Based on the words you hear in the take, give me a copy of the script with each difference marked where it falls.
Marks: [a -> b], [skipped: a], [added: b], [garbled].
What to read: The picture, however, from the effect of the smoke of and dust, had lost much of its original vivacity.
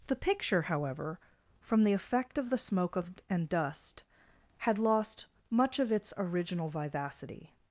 The picture, however, from the effect of the smoke of and dust, had lost much of its original vivacity.